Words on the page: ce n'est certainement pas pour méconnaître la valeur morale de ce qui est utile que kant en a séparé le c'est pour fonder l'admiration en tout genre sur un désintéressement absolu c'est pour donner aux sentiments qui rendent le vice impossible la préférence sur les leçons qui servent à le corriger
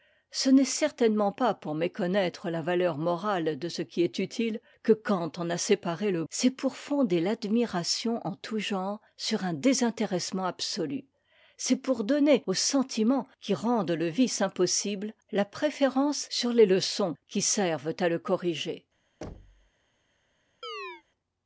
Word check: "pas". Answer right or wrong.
right